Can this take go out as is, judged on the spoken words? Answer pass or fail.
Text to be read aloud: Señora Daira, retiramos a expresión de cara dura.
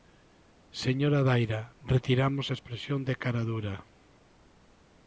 pass